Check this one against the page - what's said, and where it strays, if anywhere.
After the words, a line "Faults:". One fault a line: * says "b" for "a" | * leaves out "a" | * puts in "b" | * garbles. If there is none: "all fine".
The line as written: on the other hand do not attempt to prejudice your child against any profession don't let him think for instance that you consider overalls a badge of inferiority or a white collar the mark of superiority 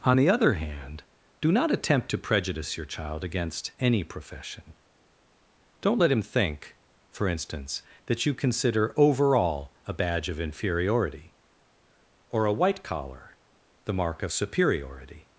on the other hand do not attempt to prejudice your child against any profession don't let him think for instance that you consider overall a badge of inferiority or a white collar the mark of superiority
Faults:
* says "overall" for "overalls"